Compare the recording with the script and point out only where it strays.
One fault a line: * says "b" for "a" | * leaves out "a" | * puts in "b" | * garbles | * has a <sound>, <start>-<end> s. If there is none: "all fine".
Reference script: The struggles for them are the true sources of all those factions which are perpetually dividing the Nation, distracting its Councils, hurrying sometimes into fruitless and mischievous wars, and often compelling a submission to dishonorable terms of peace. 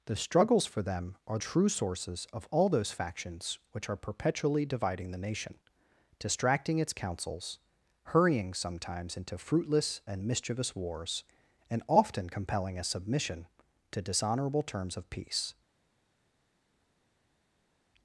* leaves out "the"